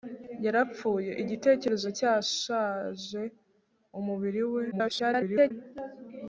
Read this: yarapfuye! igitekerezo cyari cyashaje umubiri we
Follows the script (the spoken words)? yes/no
no